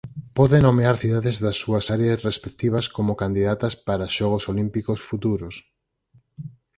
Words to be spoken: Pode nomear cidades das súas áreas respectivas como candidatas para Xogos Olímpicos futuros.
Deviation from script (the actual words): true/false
false